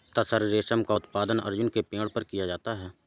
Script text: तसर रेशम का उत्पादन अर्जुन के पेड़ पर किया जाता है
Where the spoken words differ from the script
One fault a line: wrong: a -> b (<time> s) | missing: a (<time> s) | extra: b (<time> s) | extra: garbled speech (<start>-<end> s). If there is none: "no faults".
no faults